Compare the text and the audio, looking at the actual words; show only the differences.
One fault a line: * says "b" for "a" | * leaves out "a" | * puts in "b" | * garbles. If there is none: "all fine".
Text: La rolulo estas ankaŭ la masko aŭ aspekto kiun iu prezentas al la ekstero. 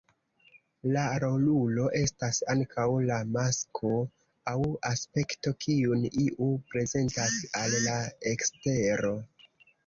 all fine